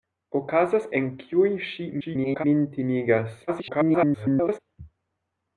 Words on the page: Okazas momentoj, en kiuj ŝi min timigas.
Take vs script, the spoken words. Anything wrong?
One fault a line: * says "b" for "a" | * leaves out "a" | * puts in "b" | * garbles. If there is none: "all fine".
* leaves out "momentoj"
* garbles
* garbles